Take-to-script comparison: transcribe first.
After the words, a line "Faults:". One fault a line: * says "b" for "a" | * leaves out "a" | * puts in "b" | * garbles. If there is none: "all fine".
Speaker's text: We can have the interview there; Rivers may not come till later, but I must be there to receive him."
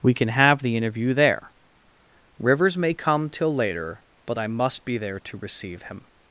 We can have the interview there; Rivers may come till later, but I must be there to receive him."
Faults:
* leaves out "not"